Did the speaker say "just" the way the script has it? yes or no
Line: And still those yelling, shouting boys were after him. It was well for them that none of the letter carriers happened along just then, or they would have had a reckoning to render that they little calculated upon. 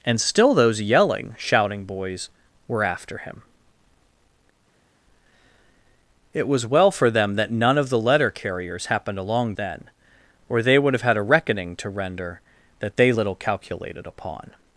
no